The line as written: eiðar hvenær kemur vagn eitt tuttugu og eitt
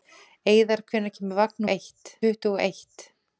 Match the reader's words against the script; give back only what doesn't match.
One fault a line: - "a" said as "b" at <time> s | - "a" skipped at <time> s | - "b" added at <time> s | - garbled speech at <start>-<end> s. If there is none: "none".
none